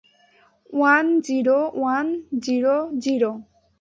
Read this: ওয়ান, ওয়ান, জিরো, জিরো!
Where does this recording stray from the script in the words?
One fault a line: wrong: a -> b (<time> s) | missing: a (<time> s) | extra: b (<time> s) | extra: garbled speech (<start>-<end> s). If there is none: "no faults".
extra: জিরো (1.2 s)